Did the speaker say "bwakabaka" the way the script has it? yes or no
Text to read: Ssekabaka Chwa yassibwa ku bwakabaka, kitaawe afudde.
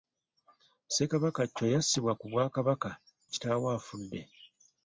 yes